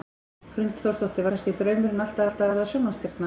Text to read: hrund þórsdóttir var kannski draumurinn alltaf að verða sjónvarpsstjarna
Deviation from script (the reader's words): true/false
true